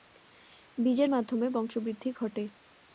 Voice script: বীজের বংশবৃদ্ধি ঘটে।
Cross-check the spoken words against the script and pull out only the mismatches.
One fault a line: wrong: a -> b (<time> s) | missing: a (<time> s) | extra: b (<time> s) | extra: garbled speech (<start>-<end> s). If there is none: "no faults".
extra: মাধ্যমে (1.1 s)